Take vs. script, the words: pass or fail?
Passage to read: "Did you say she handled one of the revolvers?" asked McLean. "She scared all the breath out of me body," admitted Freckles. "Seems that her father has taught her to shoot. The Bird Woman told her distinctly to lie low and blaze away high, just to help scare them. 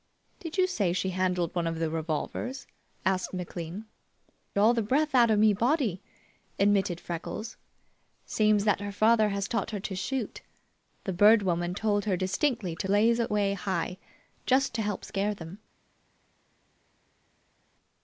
fail